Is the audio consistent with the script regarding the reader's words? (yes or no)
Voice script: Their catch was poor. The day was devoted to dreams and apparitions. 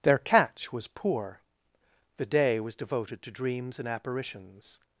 yes